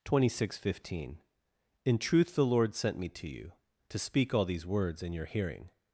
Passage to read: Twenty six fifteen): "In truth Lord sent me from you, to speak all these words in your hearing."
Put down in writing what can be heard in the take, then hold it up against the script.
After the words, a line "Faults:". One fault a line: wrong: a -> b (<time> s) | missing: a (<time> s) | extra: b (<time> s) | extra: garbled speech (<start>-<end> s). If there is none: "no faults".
Twenty six fifteen): "In truth the Lord sent me to you, to speak all these words in your hearing."
Faults:
extra: the (2.3 s)
wrong: from -> to (3.1 s)